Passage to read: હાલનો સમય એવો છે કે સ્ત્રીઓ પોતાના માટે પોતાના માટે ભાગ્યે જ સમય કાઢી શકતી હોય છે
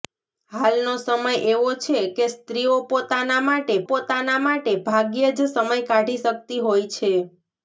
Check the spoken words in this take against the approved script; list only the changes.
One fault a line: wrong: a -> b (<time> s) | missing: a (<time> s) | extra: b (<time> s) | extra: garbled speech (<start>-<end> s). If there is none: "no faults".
no faults